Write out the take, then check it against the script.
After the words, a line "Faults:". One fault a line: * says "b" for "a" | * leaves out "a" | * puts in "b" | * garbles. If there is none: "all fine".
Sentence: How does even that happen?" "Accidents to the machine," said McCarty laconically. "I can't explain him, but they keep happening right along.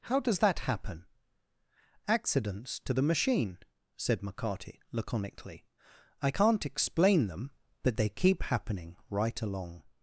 How does that happen?" "Accidents to the machine," said McCarty laconically. "I can't explain them, but they keep happening right along.
Faults:
* leaves out "even"
* says "them" for "him"